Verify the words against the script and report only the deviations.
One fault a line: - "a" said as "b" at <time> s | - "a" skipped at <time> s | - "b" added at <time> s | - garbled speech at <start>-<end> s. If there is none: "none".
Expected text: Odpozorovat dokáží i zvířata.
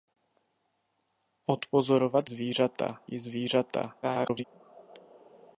- "dokáží" said as "zvířata" at 2.2 s
- garbled speech at 4.0-4.4 s